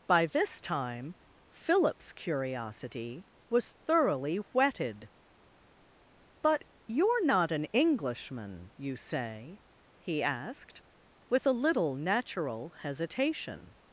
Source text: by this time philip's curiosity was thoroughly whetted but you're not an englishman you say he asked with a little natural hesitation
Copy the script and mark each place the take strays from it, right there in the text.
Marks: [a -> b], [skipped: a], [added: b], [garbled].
by this time philip's curiosity was thoroughly whetted but you're not an englishman you say he asked with a little natural hesitation